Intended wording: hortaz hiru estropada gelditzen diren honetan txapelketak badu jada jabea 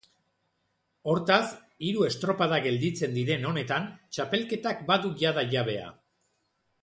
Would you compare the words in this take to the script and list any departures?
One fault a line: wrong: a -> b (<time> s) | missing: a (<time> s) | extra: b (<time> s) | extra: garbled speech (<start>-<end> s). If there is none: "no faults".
no faults